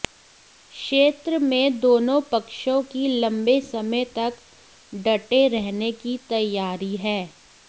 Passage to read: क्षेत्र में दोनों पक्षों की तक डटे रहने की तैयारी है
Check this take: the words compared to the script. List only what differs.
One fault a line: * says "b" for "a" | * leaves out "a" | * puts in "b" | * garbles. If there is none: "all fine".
* puts in "लंबे समय"